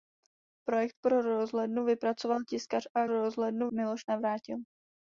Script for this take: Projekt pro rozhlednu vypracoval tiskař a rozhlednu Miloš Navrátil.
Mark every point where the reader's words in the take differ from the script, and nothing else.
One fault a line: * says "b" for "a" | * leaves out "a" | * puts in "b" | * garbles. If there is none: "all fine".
all fine